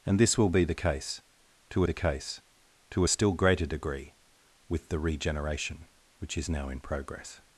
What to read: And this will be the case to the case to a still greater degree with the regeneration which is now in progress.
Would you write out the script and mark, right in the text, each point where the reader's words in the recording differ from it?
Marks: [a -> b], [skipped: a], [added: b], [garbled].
And this will be the case to the case to a still greater degree with the regeneration which is now in progress.